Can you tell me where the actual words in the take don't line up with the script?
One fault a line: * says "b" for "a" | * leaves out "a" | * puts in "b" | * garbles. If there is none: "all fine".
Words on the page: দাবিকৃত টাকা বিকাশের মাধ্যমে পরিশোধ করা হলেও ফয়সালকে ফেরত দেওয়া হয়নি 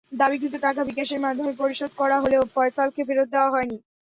all fine